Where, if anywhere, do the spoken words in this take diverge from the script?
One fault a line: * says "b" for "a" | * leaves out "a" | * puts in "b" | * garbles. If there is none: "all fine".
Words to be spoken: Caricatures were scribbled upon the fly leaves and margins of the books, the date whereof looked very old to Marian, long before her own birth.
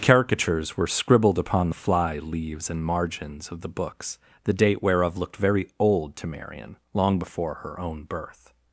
all fine